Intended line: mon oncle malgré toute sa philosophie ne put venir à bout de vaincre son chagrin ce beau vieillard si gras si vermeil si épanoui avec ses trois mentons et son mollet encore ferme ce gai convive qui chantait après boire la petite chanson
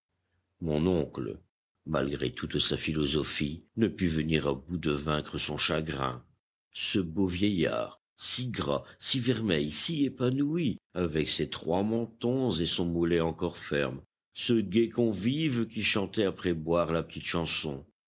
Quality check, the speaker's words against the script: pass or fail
pass